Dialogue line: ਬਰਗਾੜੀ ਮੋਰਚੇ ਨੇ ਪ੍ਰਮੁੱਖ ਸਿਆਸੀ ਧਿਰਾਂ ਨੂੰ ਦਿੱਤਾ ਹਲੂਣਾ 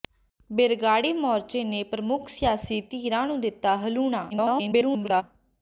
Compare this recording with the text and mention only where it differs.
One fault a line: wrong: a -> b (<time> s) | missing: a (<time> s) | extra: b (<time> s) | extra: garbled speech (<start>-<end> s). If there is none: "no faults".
extra: garbled speech (4.3-5.2 s)